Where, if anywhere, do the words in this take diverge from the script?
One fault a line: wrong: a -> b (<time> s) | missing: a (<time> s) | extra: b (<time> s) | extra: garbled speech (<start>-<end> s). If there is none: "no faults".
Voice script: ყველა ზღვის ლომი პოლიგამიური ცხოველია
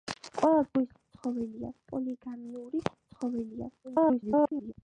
wrong: ლომი -> ცხოველია (0.9 s)
extra: garbled speech (3.8-4.7 s)